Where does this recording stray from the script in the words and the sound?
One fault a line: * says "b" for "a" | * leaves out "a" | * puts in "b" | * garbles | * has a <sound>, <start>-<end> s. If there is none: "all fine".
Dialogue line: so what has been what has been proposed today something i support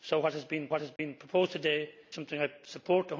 * has a dropout, 1.0-1.0 s